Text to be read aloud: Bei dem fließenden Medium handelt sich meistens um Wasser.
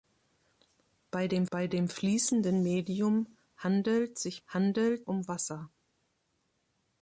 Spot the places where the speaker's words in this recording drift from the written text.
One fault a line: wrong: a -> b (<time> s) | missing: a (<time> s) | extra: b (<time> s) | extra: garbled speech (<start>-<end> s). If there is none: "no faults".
extra: bei dem (1.5 s)
wrong: meistens -> handelt (4.5 s)